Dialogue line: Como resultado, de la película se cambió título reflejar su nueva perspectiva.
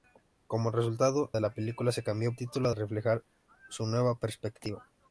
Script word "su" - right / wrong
right